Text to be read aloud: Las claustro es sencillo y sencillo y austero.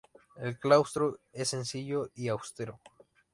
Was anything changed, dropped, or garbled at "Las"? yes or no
yes